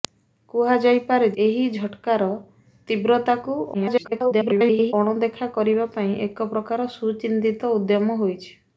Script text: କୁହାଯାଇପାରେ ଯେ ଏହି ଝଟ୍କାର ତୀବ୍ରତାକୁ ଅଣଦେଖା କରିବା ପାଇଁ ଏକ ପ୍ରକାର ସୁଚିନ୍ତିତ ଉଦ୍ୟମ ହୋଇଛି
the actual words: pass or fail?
fail